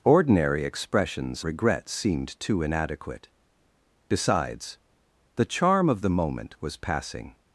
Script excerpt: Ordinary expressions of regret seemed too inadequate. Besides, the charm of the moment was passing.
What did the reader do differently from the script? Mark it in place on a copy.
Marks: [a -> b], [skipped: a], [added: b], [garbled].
Ordinary expressions [skipped: of] regret seemed too inadequate. Besides, the charm of the moment was passing.